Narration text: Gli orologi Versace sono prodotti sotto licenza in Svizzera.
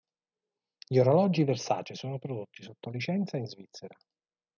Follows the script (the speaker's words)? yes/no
yes